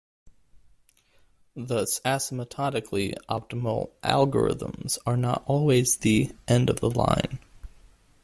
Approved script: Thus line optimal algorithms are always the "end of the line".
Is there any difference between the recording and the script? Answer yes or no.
yes